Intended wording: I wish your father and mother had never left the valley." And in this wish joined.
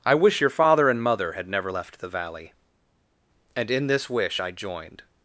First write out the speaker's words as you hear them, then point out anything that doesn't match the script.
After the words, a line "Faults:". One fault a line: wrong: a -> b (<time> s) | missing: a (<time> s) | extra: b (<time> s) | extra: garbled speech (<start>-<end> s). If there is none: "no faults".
I wish your father and mother had never left the valley." And in this wish I joined.
Faults:
extra: I (4.4 s)